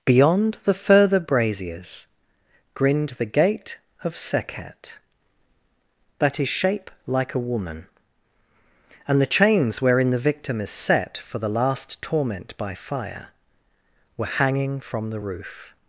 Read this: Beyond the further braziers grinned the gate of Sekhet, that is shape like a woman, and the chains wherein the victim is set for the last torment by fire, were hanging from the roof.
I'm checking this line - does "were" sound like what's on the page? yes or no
yes